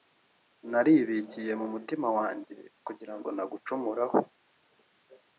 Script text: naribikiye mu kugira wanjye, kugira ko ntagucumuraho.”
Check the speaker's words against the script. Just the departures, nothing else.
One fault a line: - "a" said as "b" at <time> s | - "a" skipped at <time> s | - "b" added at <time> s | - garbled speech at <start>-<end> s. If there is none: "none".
- "kugira" said as "mutima" at 1.7 s
- "ko" said as "ngo" at 3.2 s